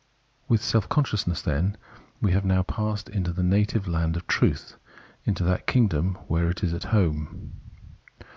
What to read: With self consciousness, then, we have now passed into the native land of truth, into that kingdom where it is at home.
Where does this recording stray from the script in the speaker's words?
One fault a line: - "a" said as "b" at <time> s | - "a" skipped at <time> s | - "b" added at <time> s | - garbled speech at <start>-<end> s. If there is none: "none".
none